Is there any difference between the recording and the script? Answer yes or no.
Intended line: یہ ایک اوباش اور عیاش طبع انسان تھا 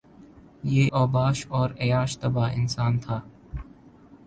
yes